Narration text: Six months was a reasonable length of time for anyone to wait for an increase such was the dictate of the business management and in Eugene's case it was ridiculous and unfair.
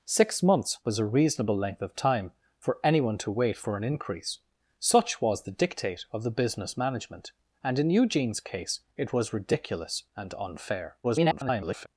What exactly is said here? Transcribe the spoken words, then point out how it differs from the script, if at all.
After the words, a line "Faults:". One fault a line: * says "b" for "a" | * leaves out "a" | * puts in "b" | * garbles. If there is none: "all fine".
Six months was a reasonable length of time for anyone to wait for an increase such was the dictate of the business management and in Eugene's case it was ridiculous and unfair. [garbled]
Faults:
* garbles